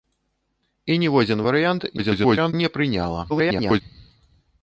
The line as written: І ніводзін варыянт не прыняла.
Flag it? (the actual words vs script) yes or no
yes